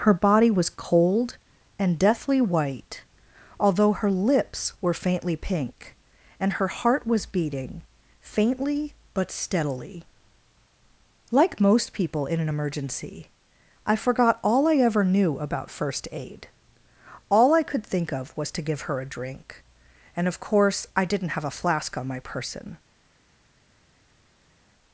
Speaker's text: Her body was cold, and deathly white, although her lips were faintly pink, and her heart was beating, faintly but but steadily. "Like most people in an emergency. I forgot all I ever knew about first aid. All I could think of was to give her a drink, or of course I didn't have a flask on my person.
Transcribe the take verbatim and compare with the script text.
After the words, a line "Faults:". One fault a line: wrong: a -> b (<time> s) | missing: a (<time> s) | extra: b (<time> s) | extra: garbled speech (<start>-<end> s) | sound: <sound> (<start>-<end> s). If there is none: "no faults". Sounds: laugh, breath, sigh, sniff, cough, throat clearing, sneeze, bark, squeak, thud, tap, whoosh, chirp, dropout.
Her body was cold, and deathly white, although her lips were faintly pink, and her heart was beating, faintly but steadily. "Like most people in an emergency. I forgot all I ever knew about first aid. All I could think of was to give her a drink, and of course I didn't have a flask on my person.
Faults:
missing: but (9.3 s)
wrong: or -> and (20.2 s)